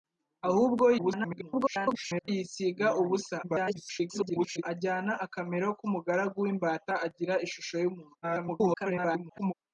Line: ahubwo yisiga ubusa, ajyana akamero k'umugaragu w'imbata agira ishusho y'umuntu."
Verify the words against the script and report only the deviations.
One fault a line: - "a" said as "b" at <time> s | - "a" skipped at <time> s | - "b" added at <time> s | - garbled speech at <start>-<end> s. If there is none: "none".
- garbled speech at 1.0-2.3 s
- garbled speech at 3.4-4.6 s
- garbled speech at 8.2-9.5 s